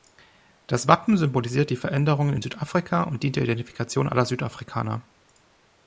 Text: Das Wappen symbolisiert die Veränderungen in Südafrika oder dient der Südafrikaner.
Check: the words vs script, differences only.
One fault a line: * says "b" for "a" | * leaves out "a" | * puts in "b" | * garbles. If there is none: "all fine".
* says "und" for "oder"
* puts in "Identifikation aller"